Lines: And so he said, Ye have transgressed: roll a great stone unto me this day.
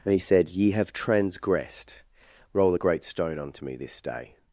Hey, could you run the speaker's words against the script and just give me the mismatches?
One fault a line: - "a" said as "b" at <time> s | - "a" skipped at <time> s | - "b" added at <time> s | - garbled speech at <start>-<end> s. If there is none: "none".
- "so" skipped at 0.1 s